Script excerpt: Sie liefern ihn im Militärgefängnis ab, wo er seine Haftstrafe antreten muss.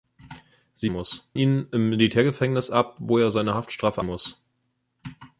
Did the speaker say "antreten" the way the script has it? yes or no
no